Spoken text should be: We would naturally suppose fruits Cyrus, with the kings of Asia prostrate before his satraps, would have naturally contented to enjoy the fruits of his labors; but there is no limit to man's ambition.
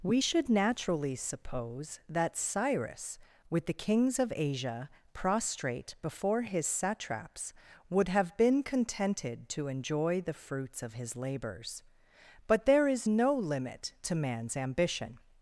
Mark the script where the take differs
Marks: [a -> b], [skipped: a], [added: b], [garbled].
We [would -> should] naturally suppose [fruits -> that] Cyrus, with the kings of Asia prostrate before his satraps, would have [naturally -> been] contented to enjoy the fruits of his labors; but there is no limit to man's ambition.